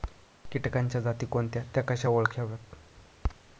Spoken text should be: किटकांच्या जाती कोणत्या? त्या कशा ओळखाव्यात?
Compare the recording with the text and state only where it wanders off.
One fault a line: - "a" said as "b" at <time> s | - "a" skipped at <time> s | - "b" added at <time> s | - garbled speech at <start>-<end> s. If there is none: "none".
none